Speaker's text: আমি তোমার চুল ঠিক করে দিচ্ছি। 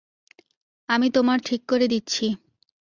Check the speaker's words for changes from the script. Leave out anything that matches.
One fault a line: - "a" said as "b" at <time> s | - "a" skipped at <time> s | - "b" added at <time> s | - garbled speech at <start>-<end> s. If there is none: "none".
- "চুল" skipped at 1.4 s